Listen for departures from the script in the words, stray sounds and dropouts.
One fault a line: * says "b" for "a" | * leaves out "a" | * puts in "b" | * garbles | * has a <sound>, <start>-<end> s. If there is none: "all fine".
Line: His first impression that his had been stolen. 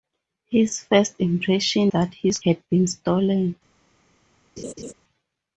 * has a laugh, 4.6-4.9 s